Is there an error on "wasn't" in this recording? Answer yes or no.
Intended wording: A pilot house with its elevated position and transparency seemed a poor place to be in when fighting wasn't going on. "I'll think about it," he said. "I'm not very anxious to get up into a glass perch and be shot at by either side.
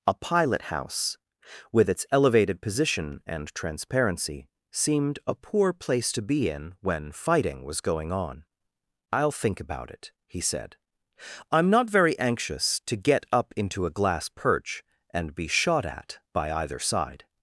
yes